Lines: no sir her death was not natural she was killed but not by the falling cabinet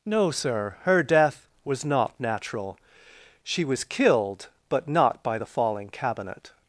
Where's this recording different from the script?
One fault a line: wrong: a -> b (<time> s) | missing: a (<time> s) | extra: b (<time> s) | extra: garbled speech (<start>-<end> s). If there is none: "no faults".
no faults